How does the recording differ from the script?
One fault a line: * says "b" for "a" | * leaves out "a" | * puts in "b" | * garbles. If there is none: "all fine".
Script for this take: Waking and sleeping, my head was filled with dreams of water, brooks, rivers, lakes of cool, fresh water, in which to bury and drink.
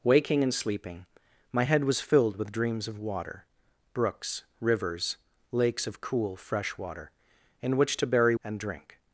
all fine